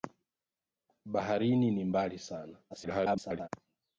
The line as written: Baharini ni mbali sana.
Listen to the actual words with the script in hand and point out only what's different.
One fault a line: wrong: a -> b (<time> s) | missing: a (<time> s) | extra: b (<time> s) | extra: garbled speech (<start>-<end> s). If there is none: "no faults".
extra: garbled speech (2.7-3.5 s)